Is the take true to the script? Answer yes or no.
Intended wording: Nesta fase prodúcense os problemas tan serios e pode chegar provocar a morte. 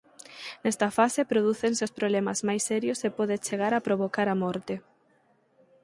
no